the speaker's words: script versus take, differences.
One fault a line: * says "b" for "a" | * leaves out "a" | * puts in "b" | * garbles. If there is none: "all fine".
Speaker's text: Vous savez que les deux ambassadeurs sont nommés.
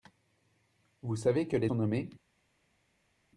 * leaves out "deux ambassadeurs"